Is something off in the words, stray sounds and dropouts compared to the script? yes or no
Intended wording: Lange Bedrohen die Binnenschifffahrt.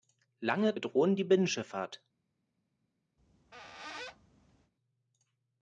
yes